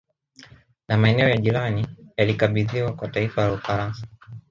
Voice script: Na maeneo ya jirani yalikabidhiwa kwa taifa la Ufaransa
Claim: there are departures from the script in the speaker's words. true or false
false